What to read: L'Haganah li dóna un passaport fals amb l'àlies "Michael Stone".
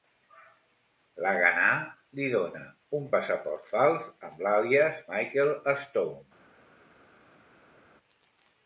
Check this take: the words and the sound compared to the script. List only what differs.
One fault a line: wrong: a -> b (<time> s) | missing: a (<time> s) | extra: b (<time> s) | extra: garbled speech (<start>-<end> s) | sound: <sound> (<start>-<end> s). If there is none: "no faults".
no faults